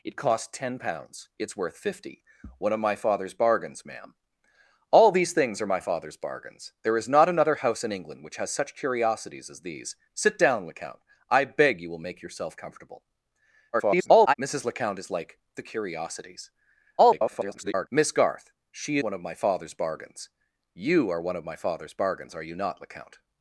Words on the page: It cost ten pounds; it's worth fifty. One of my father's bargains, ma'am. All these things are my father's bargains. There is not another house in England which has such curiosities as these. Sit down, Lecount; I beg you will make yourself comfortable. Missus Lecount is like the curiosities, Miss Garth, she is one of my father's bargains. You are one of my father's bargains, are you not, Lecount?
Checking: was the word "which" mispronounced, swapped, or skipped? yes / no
no